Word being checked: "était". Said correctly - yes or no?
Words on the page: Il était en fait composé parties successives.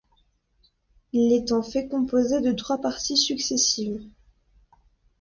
no